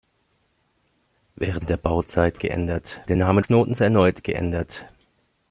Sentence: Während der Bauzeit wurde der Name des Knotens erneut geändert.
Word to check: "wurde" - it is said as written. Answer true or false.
false